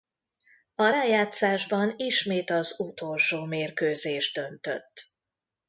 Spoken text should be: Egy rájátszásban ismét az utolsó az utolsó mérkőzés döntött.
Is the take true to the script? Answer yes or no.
no